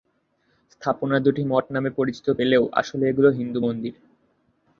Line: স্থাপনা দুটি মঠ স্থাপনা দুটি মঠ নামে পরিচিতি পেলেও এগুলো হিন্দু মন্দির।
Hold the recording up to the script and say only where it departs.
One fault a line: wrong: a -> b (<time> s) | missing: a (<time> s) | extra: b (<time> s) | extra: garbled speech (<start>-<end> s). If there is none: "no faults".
missing: স্থাপনা দুটি মঠ (1.6 s)
extra: আসলে (2.8 s)